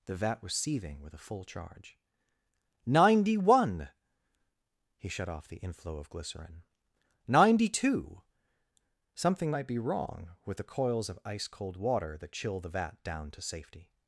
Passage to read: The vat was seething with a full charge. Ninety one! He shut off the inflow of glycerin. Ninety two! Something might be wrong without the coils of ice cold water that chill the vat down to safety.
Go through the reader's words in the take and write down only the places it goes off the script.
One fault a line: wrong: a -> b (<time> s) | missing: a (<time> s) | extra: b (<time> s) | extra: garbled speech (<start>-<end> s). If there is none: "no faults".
wrong: without -> with (10.4 s)